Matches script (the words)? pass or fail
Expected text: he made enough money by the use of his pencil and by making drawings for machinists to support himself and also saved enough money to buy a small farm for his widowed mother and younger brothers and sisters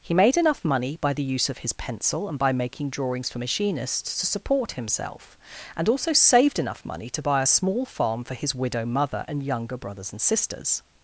fail